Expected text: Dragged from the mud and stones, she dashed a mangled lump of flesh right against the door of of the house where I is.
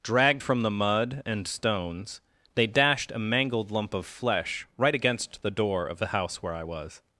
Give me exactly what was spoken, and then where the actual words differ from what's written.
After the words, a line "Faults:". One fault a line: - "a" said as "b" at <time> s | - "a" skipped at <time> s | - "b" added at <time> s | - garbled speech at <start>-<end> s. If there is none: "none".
Dragged from the mud and stones, they dashed a mangled lump of flesh right against the door of the house where I was.
Faults:
- "she" said as "they" at 2.5 s
- "of" skipped at 6.0 s
- "is" said as "was" at 6.6 s